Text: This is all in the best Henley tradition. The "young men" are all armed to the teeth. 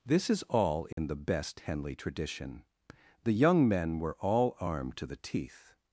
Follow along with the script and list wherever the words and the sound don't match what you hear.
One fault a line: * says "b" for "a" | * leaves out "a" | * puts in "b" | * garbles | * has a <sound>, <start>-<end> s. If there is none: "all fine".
* has a dropout, 0.9-1.0 s
* says "were" for "are"